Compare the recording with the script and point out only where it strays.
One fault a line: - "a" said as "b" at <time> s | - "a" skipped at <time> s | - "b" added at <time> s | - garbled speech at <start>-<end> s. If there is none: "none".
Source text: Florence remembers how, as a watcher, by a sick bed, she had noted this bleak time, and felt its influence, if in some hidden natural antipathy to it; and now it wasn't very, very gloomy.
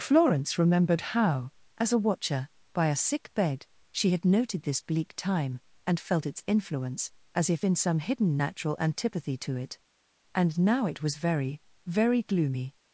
- "remembers" said as "remembered" at 0.6 s
- "as" added at 7.3 s
- "wasn't" said as "was" at 11.0 s